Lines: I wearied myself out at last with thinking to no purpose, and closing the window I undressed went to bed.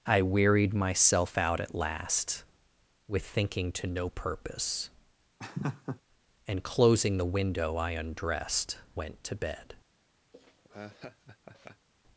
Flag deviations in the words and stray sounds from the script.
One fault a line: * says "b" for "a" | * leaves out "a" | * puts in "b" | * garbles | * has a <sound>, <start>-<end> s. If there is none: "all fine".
* has a laugh, 5.4-6.0 s
* has a laugh, 10.3-11.9 s